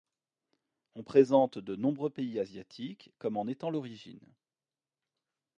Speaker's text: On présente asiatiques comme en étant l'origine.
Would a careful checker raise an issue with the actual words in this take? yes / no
yes